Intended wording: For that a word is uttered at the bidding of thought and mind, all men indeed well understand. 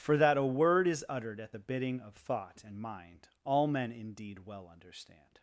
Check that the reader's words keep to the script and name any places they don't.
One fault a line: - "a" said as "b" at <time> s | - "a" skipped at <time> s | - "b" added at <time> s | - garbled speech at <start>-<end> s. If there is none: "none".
none